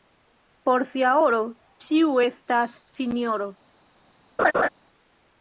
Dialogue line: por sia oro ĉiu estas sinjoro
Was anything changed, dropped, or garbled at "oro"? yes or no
no